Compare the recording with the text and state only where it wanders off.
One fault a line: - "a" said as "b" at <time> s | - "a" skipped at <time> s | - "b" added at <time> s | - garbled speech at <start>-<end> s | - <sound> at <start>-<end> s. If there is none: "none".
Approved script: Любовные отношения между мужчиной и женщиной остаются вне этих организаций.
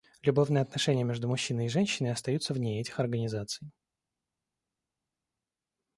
none